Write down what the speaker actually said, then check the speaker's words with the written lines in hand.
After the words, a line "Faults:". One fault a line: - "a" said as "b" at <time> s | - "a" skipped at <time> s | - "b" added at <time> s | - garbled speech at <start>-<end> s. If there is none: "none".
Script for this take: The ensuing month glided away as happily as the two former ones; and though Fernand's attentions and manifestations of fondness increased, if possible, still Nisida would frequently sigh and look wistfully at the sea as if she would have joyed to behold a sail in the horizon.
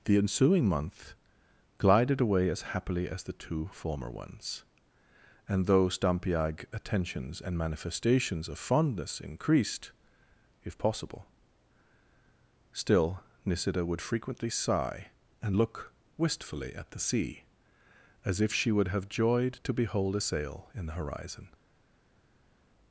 The ensuing month glided away as happily as the two former ones; and though Stampiag attentions and manifestations of fondness increased, if possible, still Nisida would frequently sigh and look wistfully at the sea as if she would have joyed to behold a sail in the horizon.
Faults:
- "Fernand's" said as "Stampiag" at 5.9 s